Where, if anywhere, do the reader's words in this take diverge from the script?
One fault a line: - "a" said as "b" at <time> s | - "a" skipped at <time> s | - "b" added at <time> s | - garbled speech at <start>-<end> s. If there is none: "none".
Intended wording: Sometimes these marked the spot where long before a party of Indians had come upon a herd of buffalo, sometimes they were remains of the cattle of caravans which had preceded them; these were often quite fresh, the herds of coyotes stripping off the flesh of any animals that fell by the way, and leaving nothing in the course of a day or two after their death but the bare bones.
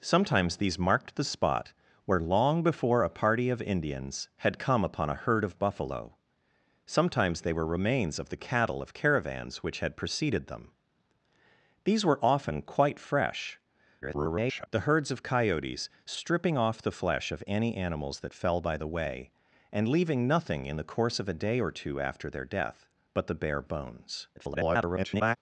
- garbled speech at 14.0-14.7 s
- garbled speech at 24.4-25.4 s